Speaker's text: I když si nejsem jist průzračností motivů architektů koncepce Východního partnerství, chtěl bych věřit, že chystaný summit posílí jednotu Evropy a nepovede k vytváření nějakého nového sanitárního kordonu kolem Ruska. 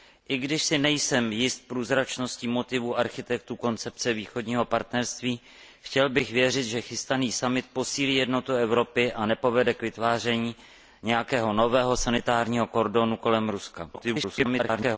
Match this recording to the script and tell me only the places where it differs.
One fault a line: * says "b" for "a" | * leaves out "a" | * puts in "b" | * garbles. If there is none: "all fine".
* garbles